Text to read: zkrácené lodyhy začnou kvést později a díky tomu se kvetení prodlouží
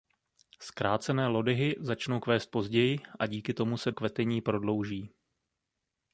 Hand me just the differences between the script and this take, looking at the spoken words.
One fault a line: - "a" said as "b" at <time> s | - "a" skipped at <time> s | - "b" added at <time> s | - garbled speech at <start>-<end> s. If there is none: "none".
none